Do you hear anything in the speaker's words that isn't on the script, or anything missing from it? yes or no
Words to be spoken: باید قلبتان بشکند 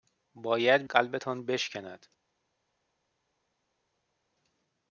no